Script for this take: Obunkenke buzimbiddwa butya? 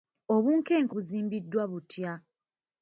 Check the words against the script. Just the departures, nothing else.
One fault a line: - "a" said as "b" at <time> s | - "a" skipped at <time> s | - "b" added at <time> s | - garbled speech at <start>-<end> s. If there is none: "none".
none